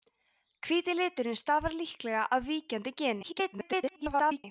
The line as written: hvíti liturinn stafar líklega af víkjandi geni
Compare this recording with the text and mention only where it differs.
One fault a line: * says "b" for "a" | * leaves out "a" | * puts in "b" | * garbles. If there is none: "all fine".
* garbles